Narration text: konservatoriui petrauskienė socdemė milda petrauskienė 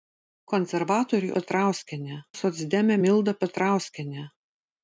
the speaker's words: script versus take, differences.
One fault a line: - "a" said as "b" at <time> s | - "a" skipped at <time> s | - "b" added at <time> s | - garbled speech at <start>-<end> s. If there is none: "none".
none